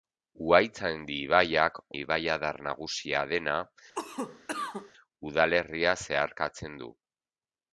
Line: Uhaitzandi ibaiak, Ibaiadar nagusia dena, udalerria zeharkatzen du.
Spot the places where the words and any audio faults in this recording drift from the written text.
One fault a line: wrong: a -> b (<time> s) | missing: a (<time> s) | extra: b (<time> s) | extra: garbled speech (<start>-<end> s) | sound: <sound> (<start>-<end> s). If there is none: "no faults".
sound: cough (3.9-4.9 s)